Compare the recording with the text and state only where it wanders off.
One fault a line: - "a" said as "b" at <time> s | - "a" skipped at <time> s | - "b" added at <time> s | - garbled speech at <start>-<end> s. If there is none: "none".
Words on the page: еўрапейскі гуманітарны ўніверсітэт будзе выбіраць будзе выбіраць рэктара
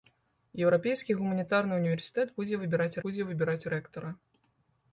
none